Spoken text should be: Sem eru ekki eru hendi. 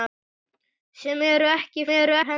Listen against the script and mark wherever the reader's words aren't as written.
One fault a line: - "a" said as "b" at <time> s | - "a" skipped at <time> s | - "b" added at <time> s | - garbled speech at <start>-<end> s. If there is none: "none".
none